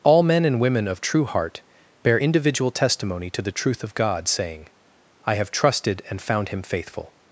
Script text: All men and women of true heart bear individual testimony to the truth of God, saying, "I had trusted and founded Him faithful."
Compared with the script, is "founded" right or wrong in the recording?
wrong